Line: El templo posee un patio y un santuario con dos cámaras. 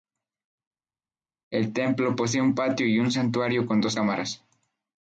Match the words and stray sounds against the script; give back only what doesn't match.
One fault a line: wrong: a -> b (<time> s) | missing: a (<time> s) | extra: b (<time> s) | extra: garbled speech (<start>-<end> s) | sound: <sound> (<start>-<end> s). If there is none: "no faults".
no faults